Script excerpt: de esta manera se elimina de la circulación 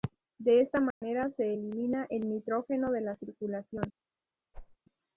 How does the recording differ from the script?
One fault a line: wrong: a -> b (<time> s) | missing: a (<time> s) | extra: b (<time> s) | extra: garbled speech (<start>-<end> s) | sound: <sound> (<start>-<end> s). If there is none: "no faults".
sound: dropout (0.9-1.0 s)
extra: el nitrógeno (2.1 s)
sound: whoosh (4.5-4.8 s)